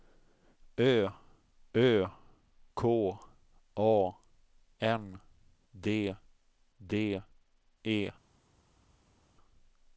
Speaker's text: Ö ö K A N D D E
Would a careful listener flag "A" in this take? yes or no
no